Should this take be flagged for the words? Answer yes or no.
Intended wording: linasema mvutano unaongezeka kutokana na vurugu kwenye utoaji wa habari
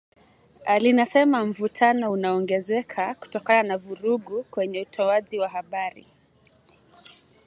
no